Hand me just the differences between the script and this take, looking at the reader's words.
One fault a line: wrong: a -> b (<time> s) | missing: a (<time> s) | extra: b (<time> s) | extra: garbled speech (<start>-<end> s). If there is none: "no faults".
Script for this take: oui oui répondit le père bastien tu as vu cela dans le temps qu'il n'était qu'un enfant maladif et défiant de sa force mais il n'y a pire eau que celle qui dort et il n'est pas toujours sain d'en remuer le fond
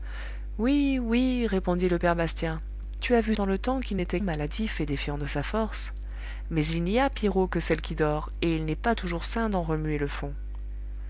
missing: cela (3.4 s)
missing: qu'un enfant (4.2 s)